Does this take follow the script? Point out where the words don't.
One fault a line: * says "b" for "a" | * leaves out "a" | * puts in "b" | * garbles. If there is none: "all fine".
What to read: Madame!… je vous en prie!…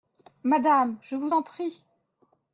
all fine